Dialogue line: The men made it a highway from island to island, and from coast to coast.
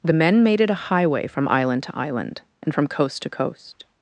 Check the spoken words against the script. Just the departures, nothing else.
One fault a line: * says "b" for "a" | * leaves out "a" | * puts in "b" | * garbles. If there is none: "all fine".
all fine